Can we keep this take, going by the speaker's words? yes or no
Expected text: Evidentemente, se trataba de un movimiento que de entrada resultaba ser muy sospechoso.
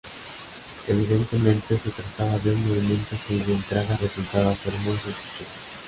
yes